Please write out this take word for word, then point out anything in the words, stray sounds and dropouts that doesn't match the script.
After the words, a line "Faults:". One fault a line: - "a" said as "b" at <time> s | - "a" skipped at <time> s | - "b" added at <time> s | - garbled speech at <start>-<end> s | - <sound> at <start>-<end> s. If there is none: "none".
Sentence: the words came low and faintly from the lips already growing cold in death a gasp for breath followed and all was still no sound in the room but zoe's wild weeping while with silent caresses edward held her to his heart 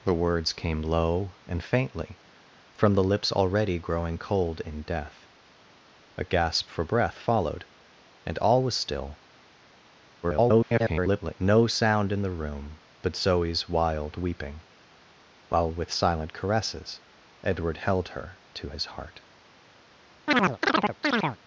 the words came low and faintly from the lips already growing cold in death a gasp for breath followed and all was still [garbled] no sound in the room but zoe's wild weeping while with silent caresses edward held her to his heart
Faults:
- garbled speech at 10.2-11.4 s
- chirp at 20.3-21.4 s